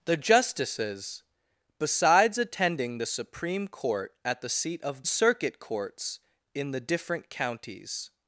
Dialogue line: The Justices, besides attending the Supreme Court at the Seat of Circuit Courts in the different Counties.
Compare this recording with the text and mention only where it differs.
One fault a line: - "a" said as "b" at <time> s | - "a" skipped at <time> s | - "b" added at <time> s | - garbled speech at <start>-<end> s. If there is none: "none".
none